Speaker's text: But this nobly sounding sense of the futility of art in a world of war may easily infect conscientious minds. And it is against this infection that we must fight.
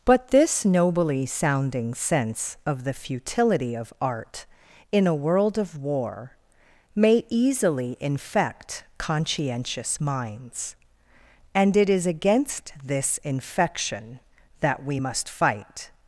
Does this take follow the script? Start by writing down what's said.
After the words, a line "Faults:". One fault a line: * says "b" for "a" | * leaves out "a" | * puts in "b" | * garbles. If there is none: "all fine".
But this nobly sounding sense of the futility of art in a world of war may easily infect conscientious minds. And it is against this infection that we must fight.
Faults:
all fine